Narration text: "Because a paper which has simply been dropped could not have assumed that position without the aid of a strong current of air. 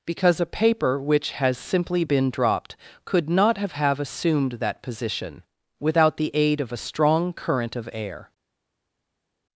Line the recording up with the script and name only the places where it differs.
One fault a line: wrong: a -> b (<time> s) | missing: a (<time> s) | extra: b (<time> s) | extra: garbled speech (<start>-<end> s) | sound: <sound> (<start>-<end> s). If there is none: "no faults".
extra: have (3.7 s)